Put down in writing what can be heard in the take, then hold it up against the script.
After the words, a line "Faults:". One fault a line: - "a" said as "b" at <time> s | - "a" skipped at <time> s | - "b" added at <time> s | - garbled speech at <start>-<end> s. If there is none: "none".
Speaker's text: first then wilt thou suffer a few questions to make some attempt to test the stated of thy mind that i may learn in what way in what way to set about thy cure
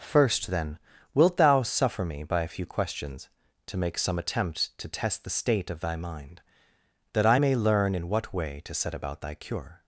first then wilt thou suffer me by a few questions to make some attempt to test the state of thy mind that i may learn in what way to set about thy cure
Faults:
- "me by" added at 2.0 s
- "stated" said as "state" at 5.3 s
- "in what way" skipped at 8.6 s